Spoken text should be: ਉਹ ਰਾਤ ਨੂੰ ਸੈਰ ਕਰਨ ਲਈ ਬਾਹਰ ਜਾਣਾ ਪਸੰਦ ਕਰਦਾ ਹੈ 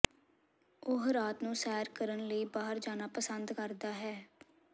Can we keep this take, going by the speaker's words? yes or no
yes